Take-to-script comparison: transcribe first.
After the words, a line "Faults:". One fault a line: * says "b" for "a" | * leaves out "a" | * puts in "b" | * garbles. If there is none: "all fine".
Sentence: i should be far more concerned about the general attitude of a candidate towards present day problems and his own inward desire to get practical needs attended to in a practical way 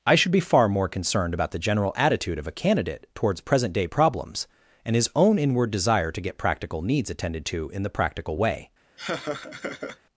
i should be far more concerned about the general attitude of a candidate towards present day problems and his own inward desire to get practical needs attended to in the practical way
Faults:
* says "the" for "a"